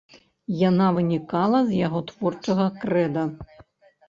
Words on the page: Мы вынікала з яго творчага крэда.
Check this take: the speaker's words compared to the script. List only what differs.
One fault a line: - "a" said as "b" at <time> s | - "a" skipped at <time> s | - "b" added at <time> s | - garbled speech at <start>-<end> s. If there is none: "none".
- "Мы" said as "Яна" at 0.7 s